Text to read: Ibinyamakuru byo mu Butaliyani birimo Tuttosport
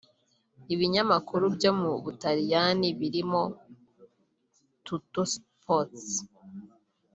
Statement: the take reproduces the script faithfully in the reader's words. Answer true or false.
true